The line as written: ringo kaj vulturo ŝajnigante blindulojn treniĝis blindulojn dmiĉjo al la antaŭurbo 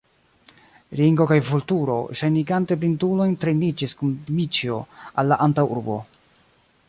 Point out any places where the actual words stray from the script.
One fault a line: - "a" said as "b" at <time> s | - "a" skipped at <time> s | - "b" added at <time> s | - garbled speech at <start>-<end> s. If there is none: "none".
- "blindulojn" said as "kun" at 4.0 s